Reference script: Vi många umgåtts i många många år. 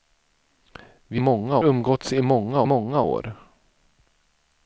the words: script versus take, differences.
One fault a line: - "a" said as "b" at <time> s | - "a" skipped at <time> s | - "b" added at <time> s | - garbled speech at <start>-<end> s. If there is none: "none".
none